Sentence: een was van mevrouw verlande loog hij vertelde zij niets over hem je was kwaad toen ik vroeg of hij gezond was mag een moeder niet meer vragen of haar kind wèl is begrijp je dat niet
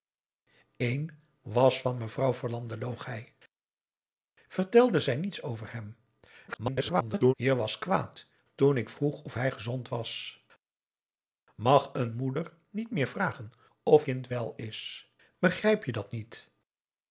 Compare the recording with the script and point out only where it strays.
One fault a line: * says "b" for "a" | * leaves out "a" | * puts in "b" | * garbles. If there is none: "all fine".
* garbles
* leaves out "haar"